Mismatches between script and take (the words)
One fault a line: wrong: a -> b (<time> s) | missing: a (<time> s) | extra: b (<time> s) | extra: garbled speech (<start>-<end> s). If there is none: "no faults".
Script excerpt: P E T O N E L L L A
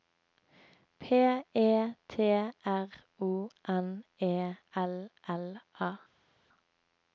extra: R (2.6 s)
missing: L (5.6 s)